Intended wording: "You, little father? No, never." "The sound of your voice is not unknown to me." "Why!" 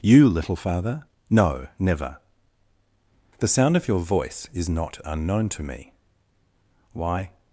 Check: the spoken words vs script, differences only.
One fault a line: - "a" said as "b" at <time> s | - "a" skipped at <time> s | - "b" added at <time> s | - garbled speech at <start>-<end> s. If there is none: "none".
none